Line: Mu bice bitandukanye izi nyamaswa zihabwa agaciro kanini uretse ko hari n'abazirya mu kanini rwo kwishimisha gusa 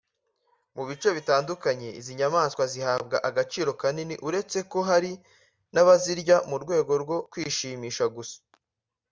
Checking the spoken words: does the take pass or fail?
fail